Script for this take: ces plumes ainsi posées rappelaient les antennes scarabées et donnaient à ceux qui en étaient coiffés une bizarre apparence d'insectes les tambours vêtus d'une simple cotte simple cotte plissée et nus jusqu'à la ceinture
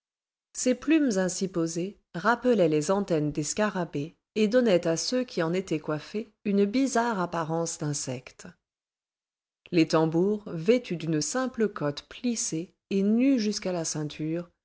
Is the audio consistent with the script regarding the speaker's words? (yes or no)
no